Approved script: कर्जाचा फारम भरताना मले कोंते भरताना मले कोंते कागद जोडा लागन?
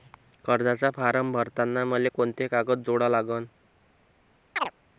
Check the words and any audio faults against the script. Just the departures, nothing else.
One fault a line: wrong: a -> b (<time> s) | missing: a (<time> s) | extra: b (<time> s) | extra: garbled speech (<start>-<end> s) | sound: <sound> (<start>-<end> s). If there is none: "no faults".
missing: भरताना मले कोंते (2.5 s)
sound: chirp (4.6-4.7 s)